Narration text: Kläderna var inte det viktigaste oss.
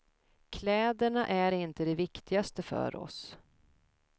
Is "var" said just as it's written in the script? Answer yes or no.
no